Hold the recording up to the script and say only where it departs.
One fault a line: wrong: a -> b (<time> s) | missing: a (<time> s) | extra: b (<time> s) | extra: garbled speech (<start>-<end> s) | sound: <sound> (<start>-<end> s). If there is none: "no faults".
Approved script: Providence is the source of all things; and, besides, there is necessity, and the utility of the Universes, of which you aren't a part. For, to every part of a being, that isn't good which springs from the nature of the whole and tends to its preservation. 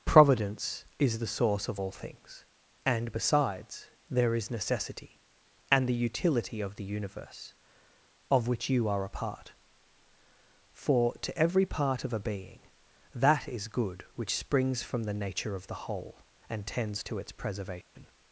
wrong: Universes -> Universe (6.8 s)
wrong: aren't -> are (8.9 s)
wrong: isn't -> is (13.5 s)
sound: dropout (17.8-18.0 s)